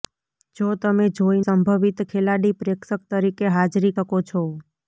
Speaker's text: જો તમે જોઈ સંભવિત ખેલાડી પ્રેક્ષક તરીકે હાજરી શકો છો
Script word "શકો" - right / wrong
right